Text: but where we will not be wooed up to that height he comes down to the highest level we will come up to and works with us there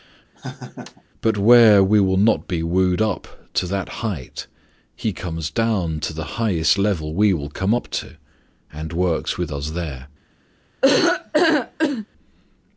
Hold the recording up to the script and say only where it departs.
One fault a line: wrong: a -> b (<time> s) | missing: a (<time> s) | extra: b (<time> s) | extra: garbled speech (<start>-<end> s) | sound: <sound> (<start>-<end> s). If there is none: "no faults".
sound: laugh (0.3-1.0 s)
sound: laugh (10.8-12.1 s)